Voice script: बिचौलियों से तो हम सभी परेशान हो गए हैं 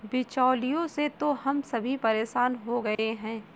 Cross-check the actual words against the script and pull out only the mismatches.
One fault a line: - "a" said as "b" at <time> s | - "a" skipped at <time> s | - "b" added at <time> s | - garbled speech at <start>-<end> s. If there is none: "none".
none